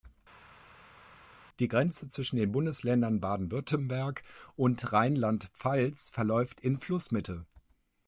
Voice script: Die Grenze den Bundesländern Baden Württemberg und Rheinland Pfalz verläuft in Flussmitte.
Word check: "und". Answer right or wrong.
right